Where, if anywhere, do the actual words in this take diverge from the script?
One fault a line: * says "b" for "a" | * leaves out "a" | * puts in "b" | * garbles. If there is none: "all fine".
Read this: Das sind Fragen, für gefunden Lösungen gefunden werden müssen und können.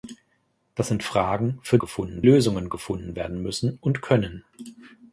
all fine